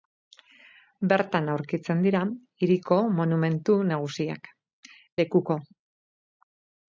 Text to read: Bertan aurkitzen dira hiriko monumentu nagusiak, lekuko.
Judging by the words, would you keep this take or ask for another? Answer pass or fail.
pass